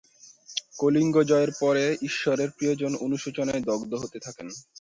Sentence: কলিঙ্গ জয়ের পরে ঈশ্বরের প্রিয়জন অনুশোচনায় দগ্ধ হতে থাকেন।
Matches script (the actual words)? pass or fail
pass